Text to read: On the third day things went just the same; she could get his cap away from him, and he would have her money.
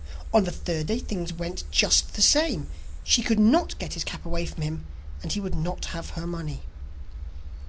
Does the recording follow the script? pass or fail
fail